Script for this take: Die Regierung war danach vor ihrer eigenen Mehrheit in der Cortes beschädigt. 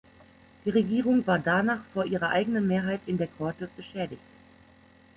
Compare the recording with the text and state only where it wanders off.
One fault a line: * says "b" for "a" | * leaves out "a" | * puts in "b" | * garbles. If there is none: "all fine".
all fine